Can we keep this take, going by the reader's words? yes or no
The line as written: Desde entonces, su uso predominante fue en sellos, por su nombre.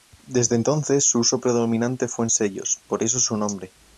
no